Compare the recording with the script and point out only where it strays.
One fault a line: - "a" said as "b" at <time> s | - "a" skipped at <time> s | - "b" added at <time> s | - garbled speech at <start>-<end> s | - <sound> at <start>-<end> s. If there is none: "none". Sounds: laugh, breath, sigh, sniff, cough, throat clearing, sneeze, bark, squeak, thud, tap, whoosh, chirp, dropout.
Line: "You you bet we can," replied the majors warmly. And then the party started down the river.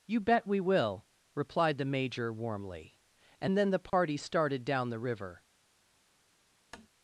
- "you" skipped at 0.2 s
- "can" said as "will" at 0.6 s
- "majors" said as "major" at 1.9 s
- dropout at 3.9-3.9 s
- tap at 6.7-6.9 s